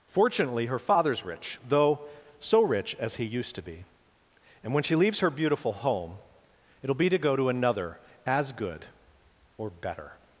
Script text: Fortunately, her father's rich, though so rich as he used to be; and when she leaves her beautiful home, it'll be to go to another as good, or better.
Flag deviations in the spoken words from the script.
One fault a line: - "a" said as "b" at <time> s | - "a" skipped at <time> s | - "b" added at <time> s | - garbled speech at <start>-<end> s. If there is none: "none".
none